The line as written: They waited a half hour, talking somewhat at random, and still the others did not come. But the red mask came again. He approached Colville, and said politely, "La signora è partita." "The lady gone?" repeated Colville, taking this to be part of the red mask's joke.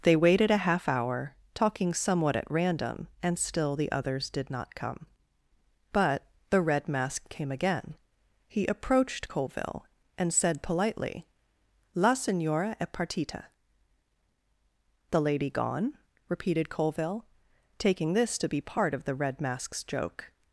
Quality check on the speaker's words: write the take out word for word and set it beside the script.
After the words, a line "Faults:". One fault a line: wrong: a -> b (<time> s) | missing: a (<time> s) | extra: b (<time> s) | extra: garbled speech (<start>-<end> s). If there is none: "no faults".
They waited a half hour, talking somewhat at random, and still the others did not come. But the red mask came again. He approached Colville, and said politely, "La signora è partita." "The lady gone?" repeated Colville, taking this to be part of the red mask's joke.
Faults:
no faults